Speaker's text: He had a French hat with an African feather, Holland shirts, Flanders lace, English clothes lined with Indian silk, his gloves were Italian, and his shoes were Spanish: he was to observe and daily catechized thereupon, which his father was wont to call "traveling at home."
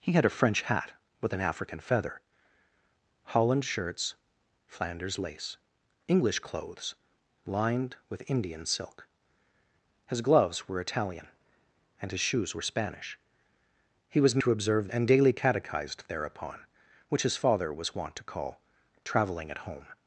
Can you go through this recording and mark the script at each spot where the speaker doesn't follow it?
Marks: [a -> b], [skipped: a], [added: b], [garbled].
He had a French hat with an African feather, Holland shirts, Flanders lace, English clothes lined with Indian silk, his gloves were Italian, and his shoes were Spanish: he was to observe and daily catechized thereupon, which his father was wont to call "traveling at home."